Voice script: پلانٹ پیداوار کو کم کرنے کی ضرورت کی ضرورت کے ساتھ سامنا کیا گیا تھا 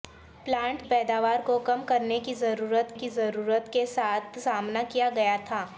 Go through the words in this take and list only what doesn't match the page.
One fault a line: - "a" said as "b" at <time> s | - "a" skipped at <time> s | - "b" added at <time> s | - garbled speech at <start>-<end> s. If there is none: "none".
none